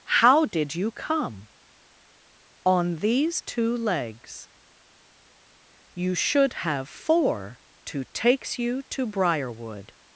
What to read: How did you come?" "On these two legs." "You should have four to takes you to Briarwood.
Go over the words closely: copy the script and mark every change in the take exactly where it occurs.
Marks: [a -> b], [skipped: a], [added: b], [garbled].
How did you come?" "On these two legs." "You should have four to takes you to Briarwood.